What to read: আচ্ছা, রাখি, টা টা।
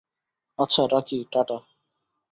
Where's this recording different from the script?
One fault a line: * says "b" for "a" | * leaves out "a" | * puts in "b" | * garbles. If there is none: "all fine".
all fine